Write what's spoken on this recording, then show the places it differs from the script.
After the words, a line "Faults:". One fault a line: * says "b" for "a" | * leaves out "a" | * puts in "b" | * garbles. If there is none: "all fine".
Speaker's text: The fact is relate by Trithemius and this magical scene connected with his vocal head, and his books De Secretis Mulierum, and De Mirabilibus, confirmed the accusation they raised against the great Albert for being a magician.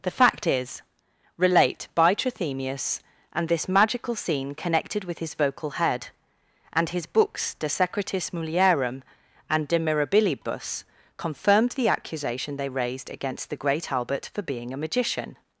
The fact is relate by Trithemius and this magical scene connected with his vocal head, and his books De Secretis Mulierum, and De Mirabilibus, confirmed the accusation they raised against the great Albert for being a magician.
Faults:
all fine